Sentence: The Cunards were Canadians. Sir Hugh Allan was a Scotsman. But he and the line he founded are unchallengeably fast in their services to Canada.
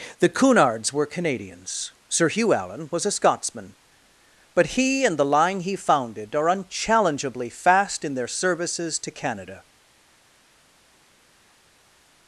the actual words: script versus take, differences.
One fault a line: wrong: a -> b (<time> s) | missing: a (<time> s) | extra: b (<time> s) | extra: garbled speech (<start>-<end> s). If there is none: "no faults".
no faults